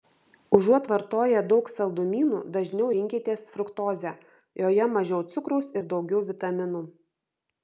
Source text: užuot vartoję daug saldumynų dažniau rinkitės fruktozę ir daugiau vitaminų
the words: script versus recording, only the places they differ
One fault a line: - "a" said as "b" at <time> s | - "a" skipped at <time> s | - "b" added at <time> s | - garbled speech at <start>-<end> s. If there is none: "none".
- "joje mažiau cukraus" added at 4.6 s